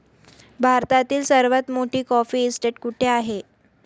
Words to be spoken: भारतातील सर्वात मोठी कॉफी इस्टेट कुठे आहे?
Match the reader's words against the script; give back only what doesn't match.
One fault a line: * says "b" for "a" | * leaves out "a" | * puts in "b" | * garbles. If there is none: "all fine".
all fine